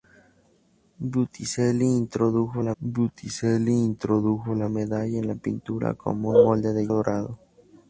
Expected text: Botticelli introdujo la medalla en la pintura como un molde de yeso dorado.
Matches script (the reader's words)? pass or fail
fail